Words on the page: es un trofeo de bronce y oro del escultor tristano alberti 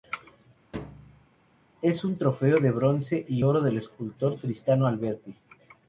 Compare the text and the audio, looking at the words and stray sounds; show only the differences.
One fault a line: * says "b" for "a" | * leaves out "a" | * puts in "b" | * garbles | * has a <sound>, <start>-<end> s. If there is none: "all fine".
* has a thud, 0.7-1.3 s